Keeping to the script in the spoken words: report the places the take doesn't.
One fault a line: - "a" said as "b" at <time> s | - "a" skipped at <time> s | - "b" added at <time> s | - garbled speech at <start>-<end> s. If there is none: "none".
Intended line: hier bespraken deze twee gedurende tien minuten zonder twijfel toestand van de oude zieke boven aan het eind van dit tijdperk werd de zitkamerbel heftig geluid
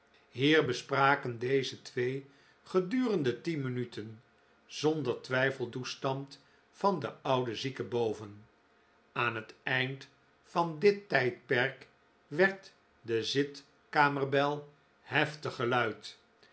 none